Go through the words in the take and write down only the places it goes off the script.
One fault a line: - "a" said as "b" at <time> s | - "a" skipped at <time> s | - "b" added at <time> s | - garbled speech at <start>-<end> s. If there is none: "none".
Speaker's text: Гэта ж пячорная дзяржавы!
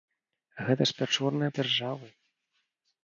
none